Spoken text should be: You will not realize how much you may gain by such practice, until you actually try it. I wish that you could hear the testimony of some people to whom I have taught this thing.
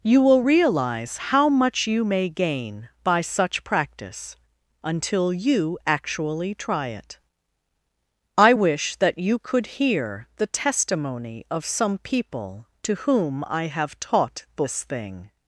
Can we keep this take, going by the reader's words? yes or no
no